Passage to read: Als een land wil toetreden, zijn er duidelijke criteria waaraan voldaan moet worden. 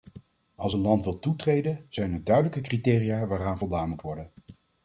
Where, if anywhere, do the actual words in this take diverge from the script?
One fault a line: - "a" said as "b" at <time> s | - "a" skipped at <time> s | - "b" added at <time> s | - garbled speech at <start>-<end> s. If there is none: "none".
none